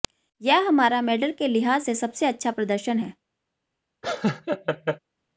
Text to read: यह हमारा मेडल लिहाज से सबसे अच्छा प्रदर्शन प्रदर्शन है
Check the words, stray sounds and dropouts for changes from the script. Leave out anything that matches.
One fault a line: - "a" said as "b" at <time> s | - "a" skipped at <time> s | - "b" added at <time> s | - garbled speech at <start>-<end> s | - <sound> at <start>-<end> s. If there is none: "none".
- "के" added at 1.3 s
- "प्रदर्शन" skipped at 3.0 s
- laugh at 4.0-5.0 s